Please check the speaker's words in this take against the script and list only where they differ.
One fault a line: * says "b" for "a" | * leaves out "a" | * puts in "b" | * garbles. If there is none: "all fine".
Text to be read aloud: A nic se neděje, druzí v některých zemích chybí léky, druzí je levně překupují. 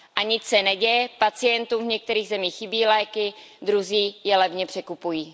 * says "pacientům" for "druzí"